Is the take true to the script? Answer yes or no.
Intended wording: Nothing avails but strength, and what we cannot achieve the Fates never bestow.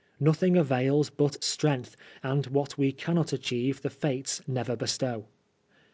yes